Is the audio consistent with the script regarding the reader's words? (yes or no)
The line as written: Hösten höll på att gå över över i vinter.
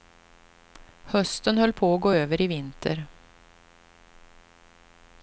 no